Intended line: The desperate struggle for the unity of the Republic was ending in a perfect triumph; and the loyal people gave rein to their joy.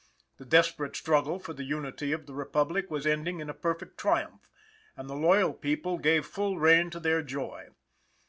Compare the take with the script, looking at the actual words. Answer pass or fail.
fail